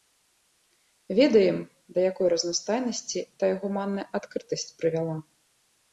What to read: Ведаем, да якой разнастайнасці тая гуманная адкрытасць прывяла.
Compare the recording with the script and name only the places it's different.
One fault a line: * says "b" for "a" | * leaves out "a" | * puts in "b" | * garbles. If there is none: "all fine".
all fine